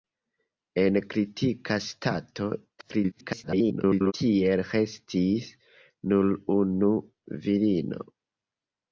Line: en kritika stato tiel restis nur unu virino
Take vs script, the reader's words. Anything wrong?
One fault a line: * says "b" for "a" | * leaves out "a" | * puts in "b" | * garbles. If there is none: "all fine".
* garbles